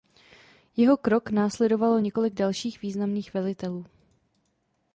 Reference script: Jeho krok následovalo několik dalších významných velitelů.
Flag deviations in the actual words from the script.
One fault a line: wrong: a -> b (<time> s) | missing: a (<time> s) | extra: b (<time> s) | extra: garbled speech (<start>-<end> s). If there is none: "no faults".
no faults